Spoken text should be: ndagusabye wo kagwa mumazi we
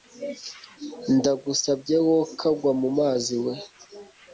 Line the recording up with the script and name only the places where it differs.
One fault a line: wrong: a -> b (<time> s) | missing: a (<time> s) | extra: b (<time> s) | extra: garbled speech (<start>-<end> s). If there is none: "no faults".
no faults